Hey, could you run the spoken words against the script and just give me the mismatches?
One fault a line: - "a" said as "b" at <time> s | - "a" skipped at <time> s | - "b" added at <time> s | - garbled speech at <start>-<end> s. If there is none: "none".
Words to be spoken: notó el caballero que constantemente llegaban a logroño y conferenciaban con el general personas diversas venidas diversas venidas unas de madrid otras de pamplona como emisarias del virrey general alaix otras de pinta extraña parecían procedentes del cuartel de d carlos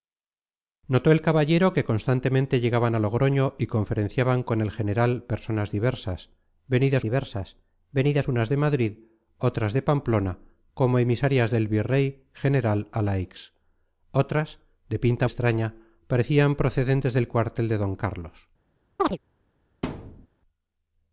none